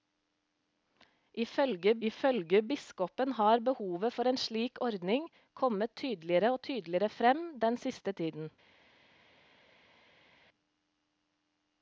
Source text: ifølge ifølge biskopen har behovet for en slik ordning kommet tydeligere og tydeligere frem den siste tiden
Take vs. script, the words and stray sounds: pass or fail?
pass